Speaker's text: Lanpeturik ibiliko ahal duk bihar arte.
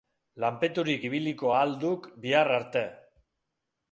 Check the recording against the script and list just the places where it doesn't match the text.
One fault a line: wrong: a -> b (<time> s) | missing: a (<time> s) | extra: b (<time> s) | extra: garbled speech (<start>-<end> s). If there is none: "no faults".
no faults